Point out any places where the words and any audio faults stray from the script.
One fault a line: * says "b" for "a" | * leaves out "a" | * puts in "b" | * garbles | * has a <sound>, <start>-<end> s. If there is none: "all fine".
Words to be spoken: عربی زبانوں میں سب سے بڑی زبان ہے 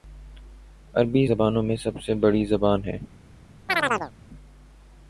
* has a chirp, 3.7-4.1 s